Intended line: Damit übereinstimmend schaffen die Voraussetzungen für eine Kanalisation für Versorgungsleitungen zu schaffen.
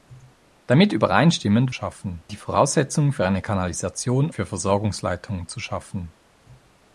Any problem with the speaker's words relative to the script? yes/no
no